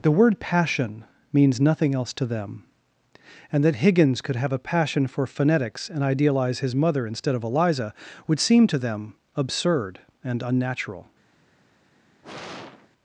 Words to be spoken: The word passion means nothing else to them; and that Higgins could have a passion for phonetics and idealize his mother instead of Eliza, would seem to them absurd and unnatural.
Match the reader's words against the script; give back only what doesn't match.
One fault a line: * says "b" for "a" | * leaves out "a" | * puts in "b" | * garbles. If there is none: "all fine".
all fine